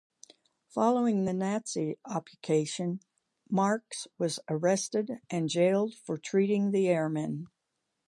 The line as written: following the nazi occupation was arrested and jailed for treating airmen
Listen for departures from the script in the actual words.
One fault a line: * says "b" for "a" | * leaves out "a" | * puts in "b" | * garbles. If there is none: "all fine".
* puts in "marx"
* puts in "the"